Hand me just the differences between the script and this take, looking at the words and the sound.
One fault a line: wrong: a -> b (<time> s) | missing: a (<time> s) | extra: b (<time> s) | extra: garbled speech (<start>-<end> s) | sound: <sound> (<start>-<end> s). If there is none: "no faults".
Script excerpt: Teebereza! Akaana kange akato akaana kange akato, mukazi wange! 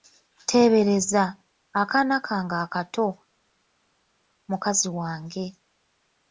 missing: akaana kange akato (3.1 s)